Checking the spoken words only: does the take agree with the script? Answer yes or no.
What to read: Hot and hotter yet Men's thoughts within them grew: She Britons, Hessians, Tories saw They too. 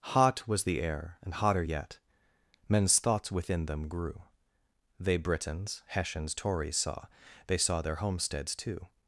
no